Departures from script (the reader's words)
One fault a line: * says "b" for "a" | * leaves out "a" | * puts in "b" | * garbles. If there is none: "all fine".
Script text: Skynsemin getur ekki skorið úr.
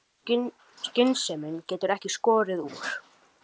all fine